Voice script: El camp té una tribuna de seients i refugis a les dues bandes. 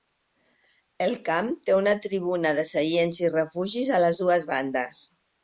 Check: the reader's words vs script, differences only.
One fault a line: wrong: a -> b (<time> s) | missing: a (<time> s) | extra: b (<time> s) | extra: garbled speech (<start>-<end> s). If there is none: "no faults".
no faults